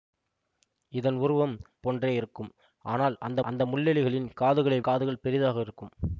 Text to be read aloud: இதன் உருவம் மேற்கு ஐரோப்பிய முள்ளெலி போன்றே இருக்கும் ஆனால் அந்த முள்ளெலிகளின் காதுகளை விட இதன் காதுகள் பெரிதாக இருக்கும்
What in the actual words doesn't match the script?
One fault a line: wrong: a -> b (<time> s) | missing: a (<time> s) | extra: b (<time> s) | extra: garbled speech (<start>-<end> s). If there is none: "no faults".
missing: மேற்கு ஐரோப்பிய முள்ளெலி (1.5 s)
extra: அந்த (3.4 s)
missing: விட இதன் (4.8 s)